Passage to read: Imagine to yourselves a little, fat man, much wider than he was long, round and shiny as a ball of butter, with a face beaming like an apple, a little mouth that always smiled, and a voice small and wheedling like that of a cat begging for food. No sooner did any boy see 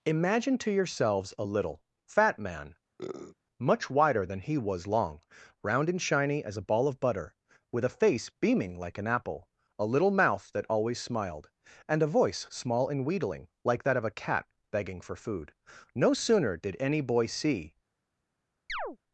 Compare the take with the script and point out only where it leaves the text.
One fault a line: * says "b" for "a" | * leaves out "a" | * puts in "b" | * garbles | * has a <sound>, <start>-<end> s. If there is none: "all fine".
* has a sniff, 3.0-3.4 s
* has a chirp, 18.7-19.0 s